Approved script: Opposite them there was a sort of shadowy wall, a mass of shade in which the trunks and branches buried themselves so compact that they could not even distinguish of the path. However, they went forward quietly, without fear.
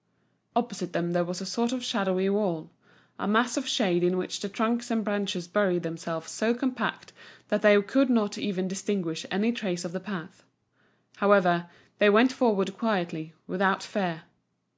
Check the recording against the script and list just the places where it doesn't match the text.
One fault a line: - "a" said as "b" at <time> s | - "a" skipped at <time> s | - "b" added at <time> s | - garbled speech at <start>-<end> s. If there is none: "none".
- "any trace" added at 9.3 s